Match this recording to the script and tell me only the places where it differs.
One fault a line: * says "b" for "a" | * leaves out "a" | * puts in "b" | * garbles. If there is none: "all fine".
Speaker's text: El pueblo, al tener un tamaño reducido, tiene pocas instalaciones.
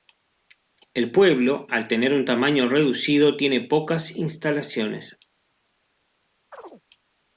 all fine